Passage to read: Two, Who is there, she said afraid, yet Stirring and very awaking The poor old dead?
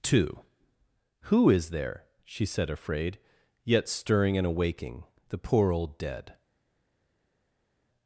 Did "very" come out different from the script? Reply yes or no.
yes